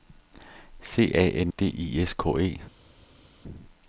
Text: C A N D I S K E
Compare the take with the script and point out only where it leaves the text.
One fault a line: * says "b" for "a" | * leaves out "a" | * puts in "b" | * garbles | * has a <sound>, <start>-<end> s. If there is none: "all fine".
all fine